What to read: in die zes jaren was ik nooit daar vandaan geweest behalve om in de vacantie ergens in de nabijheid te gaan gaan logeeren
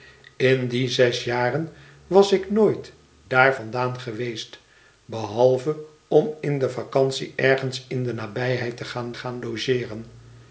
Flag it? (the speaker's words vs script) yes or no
no